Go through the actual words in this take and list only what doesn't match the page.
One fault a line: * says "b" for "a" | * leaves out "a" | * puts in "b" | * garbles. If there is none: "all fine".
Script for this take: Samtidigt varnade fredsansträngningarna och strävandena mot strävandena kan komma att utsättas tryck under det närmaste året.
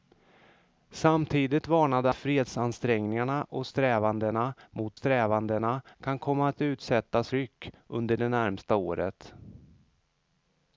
all fine